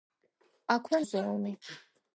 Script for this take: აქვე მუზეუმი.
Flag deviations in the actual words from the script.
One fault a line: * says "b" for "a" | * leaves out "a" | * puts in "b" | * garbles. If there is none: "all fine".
all fine